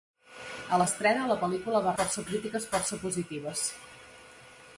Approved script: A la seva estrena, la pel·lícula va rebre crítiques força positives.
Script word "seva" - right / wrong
wrong